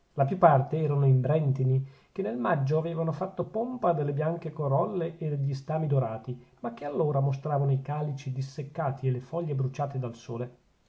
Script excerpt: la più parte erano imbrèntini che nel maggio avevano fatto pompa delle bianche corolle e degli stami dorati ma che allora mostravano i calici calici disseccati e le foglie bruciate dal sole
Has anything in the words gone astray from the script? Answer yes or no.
yes